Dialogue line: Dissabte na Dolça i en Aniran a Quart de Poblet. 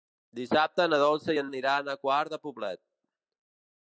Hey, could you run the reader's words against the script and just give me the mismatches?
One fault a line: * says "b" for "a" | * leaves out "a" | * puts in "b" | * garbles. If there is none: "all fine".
all fine